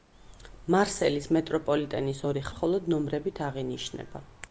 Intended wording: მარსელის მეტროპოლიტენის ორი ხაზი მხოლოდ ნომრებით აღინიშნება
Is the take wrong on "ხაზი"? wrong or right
wrong